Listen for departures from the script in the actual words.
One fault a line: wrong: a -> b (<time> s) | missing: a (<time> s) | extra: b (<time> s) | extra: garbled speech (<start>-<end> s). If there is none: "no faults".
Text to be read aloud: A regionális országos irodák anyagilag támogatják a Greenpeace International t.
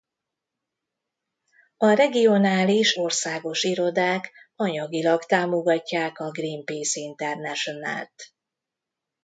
no faults